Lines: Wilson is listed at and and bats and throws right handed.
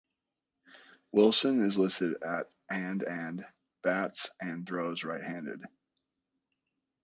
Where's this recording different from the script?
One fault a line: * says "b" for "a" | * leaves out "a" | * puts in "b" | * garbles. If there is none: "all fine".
all fine